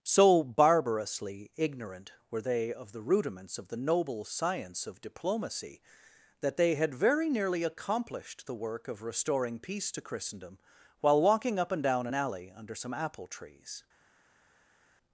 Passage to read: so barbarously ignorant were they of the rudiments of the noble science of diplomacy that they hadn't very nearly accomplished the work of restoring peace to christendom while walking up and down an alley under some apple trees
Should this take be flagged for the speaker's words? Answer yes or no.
yes